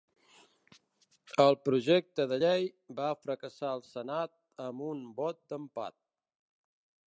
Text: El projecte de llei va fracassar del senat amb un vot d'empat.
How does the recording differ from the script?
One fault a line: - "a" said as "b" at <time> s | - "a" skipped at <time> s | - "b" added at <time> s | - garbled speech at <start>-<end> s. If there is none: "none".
- "del" said as "al" at 3.7 s